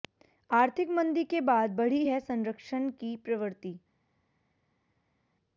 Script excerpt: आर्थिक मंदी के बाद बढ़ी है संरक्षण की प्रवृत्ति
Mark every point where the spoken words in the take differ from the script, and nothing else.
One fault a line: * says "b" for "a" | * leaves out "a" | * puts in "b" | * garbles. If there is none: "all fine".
all fine